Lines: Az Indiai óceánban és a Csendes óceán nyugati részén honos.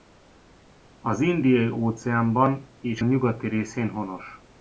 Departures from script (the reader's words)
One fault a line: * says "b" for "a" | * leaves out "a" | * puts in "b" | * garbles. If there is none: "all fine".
* leaves out "a Csendes óceán"